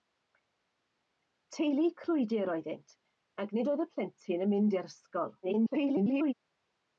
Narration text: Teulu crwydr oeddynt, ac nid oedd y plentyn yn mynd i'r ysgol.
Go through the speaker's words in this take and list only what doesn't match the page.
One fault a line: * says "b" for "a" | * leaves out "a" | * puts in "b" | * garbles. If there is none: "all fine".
* garbles